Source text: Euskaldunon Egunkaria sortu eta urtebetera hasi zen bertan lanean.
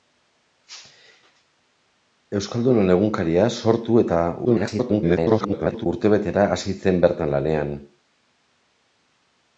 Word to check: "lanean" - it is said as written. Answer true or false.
true